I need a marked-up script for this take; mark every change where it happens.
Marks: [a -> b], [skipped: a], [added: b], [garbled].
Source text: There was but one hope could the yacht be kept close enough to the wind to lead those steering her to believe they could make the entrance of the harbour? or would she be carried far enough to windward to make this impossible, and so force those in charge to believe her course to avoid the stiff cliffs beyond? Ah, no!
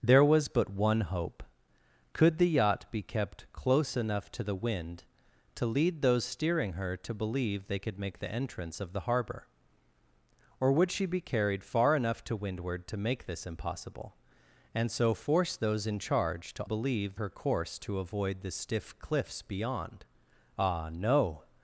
There was but one hope could the yacht be kept close enough to the wind to lead those steering her to believe they could make the entrance of the harbour? or would she be carried far enough to windward to make this impossible, and so force those in charge to believe her course to avoid the stiff cliffs beyond? Ah, no!